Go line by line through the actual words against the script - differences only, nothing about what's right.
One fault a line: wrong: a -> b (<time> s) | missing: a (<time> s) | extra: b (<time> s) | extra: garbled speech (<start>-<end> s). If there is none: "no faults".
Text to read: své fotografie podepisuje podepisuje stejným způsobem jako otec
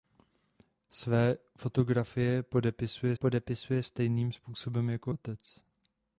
no faults